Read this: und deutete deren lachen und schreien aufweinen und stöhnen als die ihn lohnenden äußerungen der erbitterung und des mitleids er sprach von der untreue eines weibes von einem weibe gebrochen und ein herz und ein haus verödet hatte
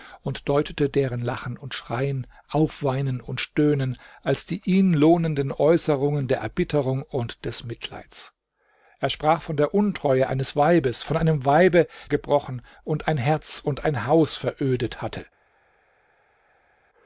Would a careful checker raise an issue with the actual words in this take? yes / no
no